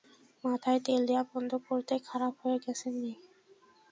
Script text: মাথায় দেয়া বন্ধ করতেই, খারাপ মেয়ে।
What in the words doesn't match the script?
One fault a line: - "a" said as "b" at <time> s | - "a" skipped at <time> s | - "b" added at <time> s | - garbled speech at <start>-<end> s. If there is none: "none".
- "তেল" added at 0.8 s
- "হয়ে গেছে" added at 2.4 s